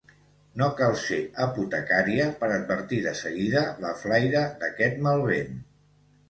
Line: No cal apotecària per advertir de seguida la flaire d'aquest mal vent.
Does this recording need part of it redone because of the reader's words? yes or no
yes